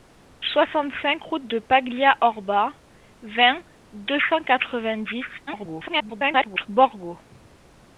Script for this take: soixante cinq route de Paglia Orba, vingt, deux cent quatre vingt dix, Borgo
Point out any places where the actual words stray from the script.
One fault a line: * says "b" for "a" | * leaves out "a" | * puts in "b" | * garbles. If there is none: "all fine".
* garbles